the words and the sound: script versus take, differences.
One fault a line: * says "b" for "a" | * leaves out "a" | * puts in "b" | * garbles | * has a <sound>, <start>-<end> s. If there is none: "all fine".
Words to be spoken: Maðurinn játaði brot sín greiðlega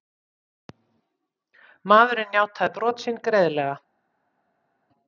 all fine